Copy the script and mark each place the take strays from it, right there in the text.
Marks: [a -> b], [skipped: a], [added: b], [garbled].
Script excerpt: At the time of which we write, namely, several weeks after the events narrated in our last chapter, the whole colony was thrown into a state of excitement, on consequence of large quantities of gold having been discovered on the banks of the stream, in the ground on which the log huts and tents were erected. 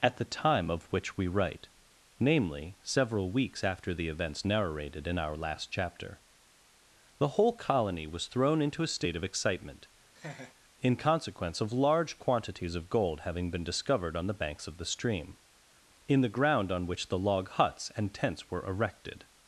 At the time of which we write, namely, several weeks after the events narrated in our last chapter, the whole colony was thrown into a state of excitement, [on -> in] consequence of large quantities of gold having been discovered on the banks of the stream, in the ground on which the log huts and tents were erected.